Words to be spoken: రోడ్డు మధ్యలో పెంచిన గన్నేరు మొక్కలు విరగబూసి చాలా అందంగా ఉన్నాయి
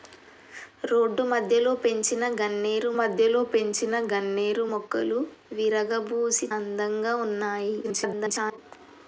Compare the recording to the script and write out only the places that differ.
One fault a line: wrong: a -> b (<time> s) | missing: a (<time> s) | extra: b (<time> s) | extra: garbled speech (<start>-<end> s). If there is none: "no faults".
extra: మధ్యలో పెంచిన గన్నేరు (3.0 s)
missing: చాలా (6.5 s)
extra: garbled speech (7.8-8.6 s)